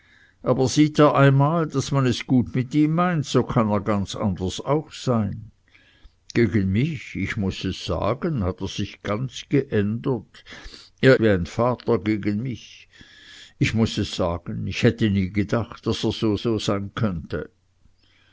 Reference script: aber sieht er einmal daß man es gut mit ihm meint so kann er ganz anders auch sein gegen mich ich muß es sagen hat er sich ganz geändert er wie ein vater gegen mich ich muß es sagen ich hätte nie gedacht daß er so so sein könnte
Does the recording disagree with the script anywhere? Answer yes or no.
no